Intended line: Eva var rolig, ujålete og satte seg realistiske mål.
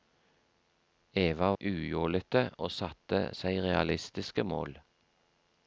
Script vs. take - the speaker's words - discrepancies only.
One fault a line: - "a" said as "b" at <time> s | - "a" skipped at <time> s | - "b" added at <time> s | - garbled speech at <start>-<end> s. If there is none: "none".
- "var rolig" skipped at 1.5 s